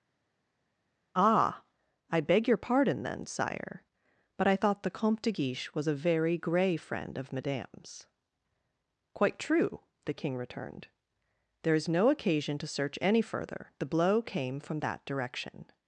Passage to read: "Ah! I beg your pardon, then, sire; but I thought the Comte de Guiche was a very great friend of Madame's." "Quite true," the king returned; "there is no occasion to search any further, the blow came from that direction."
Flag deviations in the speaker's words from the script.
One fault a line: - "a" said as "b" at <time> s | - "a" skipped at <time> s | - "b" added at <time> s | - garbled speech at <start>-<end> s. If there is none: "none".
- "great" said as "grey" at 6.4 s